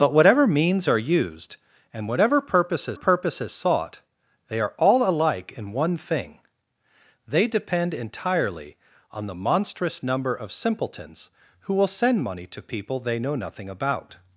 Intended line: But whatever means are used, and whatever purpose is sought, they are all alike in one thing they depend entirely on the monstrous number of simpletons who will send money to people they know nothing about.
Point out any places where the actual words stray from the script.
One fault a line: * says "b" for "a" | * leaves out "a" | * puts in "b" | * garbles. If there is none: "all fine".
* puts in "purpose is"